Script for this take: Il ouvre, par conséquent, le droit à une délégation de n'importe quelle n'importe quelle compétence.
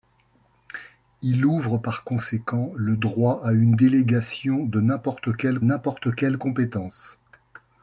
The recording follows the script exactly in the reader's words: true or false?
true